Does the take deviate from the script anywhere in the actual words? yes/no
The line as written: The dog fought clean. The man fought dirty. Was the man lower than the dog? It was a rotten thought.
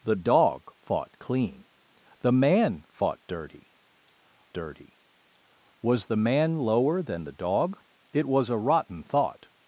yes